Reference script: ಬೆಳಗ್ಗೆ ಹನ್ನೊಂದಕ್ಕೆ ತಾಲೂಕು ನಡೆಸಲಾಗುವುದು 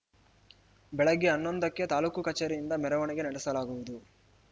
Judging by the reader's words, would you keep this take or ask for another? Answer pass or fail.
fail